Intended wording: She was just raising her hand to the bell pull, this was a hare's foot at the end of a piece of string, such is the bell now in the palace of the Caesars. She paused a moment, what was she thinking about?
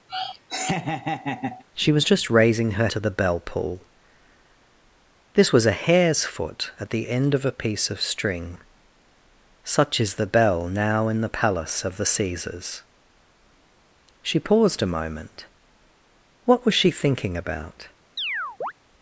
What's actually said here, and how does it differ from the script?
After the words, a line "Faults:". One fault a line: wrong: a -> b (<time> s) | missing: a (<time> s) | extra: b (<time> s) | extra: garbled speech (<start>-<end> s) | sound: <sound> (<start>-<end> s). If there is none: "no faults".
She was just raising her to the bell pull, this was a hare's foot at the end of a piece of string, such is the bell now in the palace of the Caesars. She paused a moment, what was she thinking about?
Faults:
sound: laugh (0.1-1.6 s)
missing: hand (2.9 s)
sound: chirp (18.2-18.7 s)